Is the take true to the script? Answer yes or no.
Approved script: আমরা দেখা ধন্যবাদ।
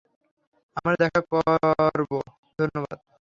no